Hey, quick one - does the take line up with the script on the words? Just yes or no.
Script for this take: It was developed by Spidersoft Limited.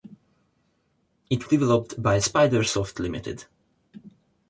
no